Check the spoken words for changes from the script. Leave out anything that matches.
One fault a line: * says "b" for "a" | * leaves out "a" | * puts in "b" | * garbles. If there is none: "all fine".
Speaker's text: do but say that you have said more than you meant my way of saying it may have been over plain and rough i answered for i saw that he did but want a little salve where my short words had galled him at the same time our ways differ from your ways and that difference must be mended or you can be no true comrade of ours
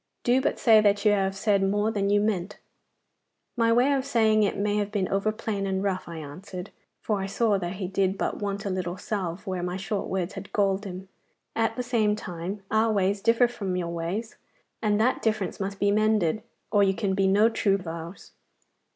* leaves out "comrade"